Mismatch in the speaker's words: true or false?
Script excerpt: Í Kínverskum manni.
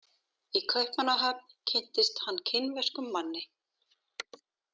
true